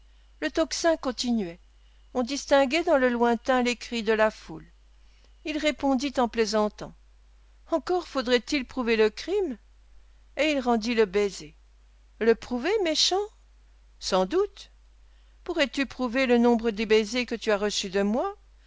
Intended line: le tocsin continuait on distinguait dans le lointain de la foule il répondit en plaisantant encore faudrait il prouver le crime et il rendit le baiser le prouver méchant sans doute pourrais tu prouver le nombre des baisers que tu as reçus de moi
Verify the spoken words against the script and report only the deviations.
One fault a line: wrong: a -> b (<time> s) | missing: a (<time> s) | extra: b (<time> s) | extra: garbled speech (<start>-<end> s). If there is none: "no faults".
extra: les cris (3.6 s)